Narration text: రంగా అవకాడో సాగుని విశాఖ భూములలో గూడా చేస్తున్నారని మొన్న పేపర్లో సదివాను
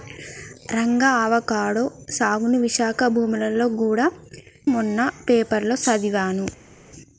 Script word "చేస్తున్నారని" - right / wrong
wrong